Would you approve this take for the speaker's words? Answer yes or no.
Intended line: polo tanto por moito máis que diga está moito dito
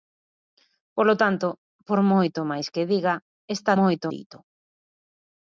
yes